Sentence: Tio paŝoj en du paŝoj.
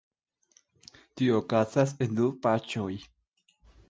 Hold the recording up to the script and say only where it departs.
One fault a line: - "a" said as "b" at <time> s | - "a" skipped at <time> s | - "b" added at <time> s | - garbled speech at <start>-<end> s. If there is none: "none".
- "paŝoj" said as "okazas" at 1.4 s